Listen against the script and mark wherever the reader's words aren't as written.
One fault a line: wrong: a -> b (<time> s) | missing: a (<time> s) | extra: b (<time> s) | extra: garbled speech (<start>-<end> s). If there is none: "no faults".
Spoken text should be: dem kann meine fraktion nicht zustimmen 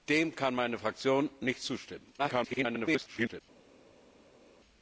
extra: garbled speech (2.2-3.4 s)